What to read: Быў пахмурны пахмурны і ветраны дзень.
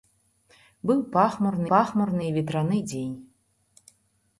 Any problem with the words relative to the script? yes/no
no